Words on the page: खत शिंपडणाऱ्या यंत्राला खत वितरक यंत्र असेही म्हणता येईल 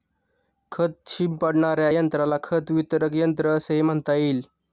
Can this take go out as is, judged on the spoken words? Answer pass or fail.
pass